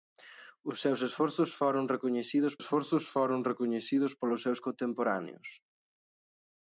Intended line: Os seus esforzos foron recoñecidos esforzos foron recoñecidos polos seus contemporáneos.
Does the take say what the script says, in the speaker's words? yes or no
yes